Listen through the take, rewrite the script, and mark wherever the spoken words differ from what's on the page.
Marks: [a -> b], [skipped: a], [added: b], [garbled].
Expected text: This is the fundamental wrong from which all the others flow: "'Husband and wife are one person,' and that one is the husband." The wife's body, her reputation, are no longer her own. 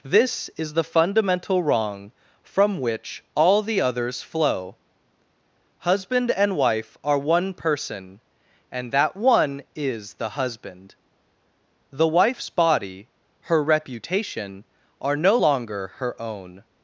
This is the fundamental wrong from which all the others flow: "'Husband and wife are one person,' and that one is the husband." The wife's body, her reputation, are no longer her own.